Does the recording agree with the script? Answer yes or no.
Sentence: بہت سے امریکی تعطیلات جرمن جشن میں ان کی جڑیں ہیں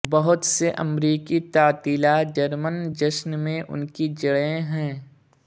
yes